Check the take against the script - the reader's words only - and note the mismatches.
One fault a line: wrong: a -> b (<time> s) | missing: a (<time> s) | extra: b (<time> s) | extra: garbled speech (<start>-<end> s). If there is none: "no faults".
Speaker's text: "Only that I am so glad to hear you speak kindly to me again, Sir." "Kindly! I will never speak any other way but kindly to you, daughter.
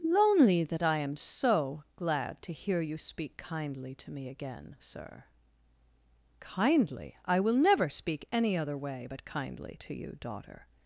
wrong: Only -> Lonely (0.0 s)